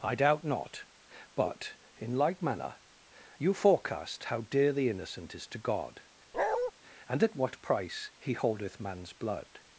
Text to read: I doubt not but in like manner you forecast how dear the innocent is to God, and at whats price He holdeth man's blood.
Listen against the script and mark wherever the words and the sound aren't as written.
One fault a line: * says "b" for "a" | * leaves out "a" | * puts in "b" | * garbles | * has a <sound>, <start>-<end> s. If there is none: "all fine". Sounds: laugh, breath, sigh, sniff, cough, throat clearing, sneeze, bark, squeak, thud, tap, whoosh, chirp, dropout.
* has a bark, 6.3-6.7 s
* says "what" for "whats"